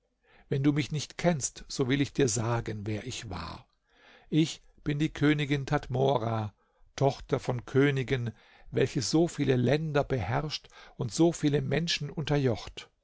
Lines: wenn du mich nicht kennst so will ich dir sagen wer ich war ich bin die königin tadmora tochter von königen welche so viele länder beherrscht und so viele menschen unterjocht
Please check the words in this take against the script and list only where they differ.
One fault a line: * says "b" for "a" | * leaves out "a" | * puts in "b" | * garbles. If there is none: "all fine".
all fine